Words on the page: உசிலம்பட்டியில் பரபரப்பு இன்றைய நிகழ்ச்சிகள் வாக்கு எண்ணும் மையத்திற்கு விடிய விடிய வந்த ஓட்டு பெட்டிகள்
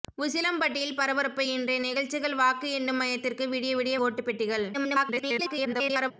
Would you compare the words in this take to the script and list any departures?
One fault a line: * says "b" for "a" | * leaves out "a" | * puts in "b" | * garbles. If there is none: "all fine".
* leaves out "வந்த"
* garbles